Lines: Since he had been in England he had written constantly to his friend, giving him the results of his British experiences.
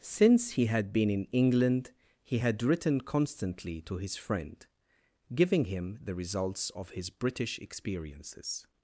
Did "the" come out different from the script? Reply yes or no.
no